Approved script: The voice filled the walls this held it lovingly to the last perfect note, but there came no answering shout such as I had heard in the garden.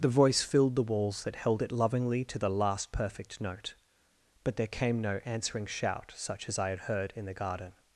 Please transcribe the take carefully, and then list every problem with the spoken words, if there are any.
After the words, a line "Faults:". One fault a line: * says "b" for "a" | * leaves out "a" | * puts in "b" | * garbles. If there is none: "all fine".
The voice filled the walls that held it lovingly to the last perfect note, but there came no answering shout such as I had heard in the garden.
Faults:
* says "that" for "this"